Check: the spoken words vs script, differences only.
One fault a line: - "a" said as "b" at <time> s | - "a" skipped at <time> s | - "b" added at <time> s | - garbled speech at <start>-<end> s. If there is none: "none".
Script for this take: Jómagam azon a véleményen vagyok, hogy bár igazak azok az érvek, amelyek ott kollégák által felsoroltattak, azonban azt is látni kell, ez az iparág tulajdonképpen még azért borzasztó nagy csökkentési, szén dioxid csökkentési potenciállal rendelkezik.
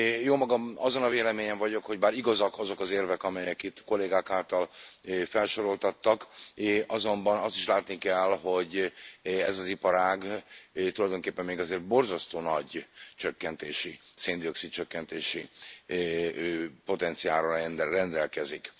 - "ott" said as "itt" at 3.6 s
- "hogy" added at 8.4 s